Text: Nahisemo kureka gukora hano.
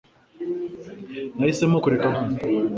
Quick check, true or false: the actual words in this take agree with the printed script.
false